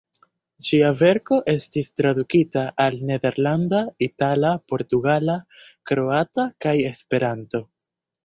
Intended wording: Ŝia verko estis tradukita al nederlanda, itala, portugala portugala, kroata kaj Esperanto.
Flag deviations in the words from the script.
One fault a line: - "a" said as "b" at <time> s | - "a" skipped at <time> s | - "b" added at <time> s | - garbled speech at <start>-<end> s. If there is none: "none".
- "portugala" skipped at 5.4 s